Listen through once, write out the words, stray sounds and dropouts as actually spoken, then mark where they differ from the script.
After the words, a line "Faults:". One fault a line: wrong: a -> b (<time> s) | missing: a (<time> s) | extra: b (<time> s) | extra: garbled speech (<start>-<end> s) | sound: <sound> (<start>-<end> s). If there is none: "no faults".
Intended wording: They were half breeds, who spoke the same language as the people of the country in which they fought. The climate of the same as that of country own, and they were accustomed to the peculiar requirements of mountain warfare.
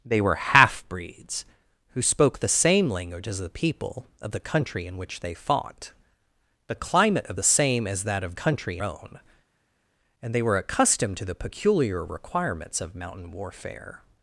They were half breeds, who spoke the same language as the people of the country in which they fought. The climate of the same as that of country own, and they were accustomed to the peculiar requirements of mountain warfare.
Faults:
no faults